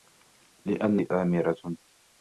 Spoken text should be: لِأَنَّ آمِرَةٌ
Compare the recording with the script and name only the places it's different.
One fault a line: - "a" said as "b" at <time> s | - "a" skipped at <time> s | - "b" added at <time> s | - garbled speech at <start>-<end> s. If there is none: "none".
none